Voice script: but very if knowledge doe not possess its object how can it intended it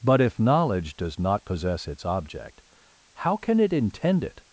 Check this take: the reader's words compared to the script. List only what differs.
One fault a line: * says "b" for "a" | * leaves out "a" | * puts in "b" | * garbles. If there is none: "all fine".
* leaves out "very"
* says "does" for "doe"
* says "intend" for "intended"